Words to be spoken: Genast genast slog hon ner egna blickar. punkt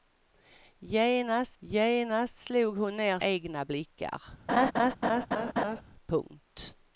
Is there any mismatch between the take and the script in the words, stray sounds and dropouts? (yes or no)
yes